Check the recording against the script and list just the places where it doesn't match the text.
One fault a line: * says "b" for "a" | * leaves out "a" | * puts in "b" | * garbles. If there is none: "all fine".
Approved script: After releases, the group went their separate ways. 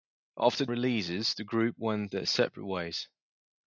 all fine